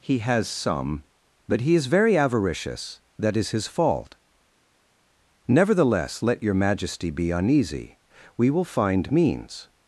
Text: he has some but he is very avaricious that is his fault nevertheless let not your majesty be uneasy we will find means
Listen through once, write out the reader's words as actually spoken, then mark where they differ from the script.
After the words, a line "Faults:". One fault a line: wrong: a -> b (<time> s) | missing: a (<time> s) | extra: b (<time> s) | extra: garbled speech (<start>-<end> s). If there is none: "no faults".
he has some but he is very avaricious that is his fault nevertheless let your majesty be uneasy we will find means
Faults:
missing: not (6.4 s)